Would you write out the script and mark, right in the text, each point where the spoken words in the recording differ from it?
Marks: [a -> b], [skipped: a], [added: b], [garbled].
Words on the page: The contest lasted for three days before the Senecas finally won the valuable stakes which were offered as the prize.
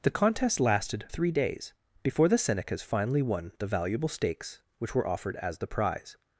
The contest lasted [skipped: for] three days before the Senecas finally won the valuable stakes which were offered as the prize.